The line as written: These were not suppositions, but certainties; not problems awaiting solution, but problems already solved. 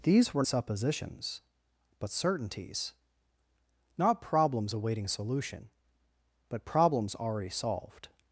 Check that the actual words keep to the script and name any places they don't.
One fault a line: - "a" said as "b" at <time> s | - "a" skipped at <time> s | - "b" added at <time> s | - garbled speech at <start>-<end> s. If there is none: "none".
- "not" skipped at 0.4 s